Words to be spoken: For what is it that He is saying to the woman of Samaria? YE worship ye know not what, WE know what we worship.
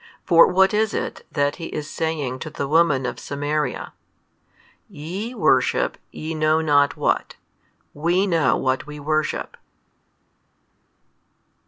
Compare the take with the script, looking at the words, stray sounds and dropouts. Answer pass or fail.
pass